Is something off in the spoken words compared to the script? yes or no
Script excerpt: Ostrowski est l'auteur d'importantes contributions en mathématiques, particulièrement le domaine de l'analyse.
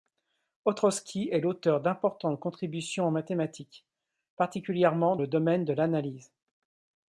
no